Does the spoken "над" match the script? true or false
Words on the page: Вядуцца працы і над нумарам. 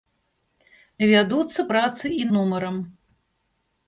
false